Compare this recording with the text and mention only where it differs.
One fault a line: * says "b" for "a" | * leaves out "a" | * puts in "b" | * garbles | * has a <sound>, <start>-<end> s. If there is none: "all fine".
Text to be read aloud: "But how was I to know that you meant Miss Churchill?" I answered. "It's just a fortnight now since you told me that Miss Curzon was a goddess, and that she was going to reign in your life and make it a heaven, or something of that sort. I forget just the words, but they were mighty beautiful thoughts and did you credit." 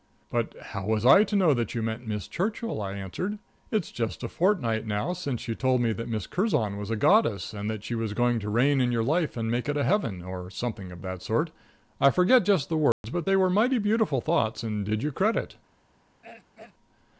* has a dropout, 12.9-13.0 s
* has a throat clearing, 16.2-16.7 s